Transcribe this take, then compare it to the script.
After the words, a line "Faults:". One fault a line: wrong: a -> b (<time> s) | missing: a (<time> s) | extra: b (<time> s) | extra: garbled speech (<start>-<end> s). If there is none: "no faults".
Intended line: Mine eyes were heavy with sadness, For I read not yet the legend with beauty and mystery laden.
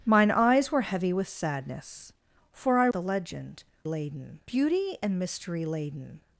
Mine eyes were heavy with sadness, For I the legend laden beauty and mystery laden.
Faults:
missing: read not yet (2.9 s)
wrong: with -> laden (3.8 s)